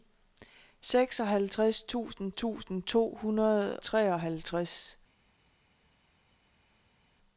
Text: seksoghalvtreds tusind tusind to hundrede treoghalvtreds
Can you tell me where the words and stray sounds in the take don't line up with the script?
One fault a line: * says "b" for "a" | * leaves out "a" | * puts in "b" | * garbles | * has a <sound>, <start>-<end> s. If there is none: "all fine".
all fine